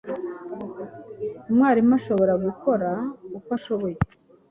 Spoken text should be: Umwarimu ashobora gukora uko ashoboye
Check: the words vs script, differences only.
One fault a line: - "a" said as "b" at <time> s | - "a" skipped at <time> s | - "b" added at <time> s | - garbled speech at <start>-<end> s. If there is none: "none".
none